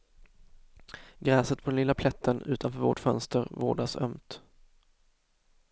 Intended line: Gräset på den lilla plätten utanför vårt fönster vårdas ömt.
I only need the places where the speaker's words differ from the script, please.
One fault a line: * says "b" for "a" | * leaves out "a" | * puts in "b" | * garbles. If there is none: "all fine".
all fine